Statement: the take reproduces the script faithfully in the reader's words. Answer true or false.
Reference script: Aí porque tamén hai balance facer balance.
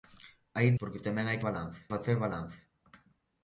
true